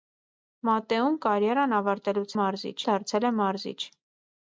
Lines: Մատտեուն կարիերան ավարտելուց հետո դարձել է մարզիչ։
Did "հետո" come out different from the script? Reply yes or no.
yes